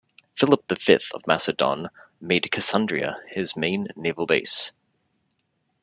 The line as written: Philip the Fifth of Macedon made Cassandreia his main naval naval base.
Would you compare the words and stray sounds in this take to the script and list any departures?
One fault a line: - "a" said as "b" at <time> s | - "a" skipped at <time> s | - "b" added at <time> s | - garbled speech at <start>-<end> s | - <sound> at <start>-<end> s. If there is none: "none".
- "naval" skipped at 4.2 s